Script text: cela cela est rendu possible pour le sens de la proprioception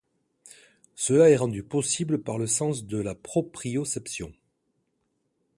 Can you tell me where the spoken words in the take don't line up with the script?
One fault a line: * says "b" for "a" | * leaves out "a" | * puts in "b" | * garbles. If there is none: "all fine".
* leaves out "cela"
* says "par" for "pour"